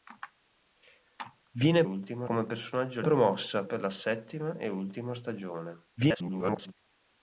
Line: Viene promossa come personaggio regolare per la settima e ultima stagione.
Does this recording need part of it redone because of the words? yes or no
yes